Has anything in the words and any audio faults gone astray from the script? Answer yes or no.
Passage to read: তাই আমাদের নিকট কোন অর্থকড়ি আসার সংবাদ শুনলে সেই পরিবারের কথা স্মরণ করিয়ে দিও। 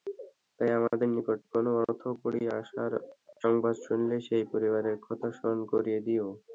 no